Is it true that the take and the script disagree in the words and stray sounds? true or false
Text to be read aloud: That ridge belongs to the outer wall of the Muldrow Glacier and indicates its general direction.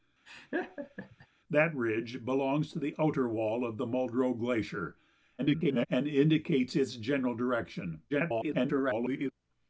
true